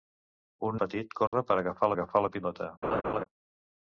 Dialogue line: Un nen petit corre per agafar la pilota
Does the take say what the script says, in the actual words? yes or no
no